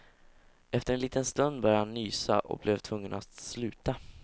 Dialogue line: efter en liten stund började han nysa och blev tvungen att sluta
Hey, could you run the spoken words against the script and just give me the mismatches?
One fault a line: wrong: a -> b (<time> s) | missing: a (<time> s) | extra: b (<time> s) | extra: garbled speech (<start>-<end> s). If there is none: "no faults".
no faults